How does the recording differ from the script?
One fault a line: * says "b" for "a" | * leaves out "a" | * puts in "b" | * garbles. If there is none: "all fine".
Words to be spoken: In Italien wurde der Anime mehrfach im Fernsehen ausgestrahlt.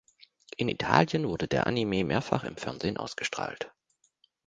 all fine